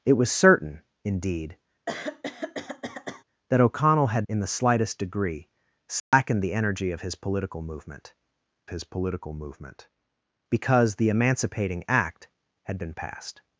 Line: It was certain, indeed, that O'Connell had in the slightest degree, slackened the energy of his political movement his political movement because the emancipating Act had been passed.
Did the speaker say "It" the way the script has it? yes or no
yes